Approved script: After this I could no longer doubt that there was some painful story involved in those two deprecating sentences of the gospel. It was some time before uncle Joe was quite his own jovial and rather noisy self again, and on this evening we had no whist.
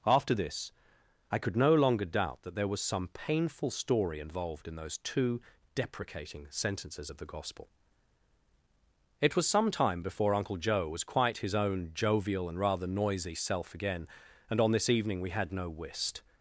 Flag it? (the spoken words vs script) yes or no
no